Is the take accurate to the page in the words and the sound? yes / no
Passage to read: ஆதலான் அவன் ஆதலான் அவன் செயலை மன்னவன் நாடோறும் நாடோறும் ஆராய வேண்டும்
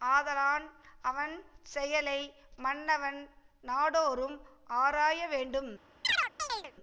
no